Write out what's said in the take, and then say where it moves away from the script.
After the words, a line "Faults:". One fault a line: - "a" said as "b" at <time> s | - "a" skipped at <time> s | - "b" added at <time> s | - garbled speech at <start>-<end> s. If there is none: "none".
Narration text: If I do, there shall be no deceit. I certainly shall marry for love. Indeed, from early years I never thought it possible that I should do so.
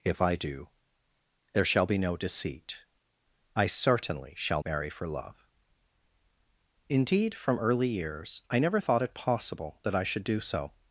If I do, there shall be no deceit. I certainly shall marry for love. Indeed, from early years I never thought it possible that I should do so.
Faults:
none